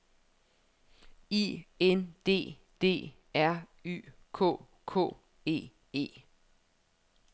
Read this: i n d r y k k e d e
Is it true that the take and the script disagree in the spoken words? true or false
true